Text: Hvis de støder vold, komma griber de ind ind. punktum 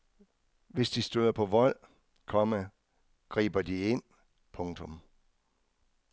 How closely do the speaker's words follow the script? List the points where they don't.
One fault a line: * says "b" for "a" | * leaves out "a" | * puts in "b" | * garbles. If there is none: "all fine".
* puts in "på"
* leaves out "ind"